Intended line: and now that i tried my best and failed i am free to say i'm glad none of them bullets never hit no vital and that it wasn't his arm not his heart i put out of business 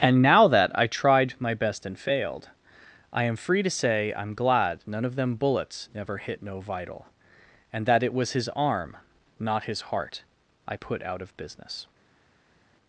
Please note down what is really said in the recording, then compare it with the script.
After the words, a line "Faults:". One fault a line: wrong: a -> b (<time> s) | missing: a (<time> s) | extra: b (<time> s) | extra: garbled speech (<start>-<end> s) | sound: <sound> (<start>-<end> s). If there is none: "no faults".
and now that i tried my best and failed i am free to say i'm glad none of them bullets never hit no vital and that it was his arm not his heart i put out of business
Faults:
wrong: wasn't -> was (8.1 s)